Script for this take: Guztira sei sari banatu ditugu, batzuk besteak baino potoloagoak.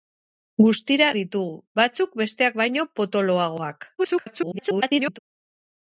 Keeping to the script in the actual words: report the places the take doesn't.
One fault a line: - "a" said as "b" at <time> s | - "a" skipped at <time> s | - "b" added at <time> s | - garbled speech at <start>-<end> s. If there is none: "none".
- "sei sari banatu" skipped at 1.1 s
- garbled speech at 4.0-5.2 s